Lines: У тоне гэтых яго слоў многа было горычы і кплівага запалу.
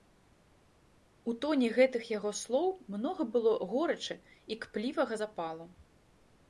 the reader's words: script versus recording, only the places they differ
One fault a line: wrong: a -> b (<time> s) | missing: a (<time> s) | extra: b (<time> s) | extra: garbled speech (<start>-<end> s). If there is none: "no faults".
no faults